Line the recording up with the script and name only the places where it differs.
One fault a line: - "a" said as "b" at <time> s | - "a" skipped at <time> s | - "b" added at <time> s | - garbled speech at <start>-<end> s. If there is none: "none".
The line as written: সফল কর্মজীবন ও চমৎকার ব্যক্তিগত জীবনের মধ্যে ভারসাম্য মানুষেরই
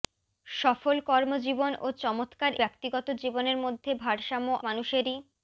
none